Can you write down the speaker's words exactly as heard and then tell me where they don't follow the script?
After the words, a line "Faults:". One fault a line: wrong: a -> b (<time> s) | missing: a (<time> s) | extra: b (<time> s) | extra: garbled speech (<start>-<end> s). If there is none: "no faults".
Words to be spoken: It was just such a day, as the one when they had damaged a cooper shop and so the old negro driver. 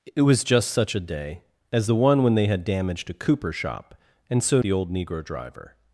It was just such a day, as the one when they had damaged a cooper shop and so the old negro driver.
Faults:
no faults